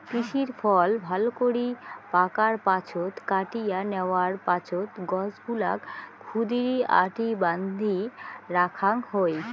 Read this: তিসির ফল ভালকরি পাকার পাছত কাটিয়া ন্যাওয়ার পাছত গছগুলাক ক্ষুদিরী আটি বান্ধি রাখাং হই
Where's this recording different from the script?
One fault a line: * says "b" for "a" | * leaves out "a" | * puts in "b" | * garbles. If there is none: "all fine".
all fine